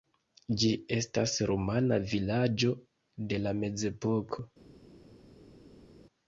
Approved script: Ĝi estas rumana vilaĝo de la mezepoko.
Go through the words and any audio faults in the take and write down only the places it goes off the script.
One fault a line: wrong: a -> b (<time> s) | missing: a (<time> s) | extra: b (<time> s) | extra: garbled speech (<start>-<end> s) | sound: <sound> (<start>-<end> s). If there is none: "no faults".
no faults